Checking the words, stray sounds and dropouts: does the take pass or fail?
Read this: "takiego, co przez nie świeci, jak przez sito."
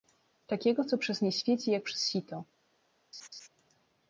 fail